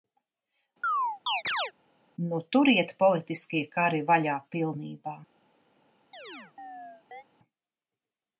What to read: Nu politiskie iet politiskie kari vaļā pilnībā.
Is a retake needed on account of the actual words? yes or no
yes